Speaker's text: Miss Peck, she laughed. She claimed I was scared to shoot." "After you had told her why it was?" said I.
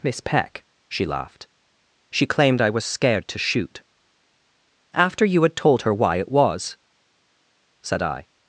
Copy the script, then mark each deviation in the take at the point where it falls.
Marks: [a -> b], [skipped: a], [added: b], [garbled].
Miss Peck, she laughed. She claimed I was scared to shoot." "After you had told her why it was?" said I.